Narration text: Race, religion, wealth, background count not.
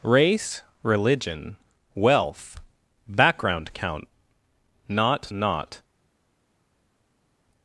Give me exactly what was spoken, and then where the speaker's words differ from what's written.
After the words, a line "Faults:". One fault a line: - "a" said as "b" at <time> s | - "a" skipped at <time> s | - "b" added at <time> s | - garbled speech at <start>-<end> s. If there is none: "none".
Race, religion, wealth, background count not not.
Faults:
- "not" added at 5.3 s